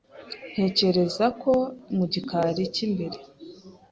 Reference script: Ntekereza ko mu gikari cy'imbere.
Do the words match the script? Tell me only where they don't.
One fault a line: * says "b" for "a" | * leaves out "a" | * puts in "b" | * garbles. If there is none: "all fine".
all fine